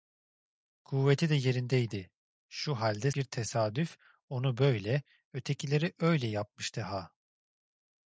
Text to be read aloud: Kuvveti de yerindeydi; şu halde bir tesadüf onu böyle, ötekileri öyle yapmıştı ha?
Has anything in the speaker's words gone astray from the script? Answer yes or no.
no